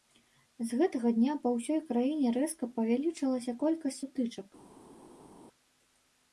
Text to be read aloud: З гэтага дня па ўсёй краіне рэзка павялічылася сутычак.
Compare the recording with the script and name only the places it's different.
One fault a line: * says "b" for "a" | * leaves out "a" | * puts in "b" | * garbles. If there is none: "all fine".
* puts in "колькасць"